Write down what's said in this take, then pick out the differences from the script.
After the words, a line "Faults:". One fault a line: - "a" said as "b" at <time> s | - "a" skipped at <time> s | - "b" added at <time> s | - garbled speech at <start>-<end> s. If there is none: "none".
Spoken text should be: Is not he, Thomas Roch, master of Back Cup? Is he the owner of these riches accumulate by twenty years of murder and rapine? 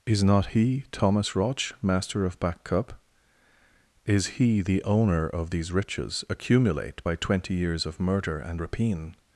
Is not he, Thomas Roch, master of Back Cup? Is he the owner of these riches accumulate by twenty years of murder and rapine?
Faults:
none